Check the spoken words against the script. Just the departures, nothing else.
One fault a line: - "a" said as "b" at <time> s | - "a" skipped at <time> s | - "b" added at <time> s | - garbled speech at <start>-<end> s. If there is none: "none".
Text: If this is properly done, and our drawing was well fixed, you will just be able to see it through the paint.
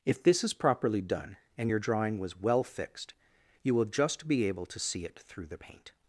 - "our" said as "your" at 1.7 s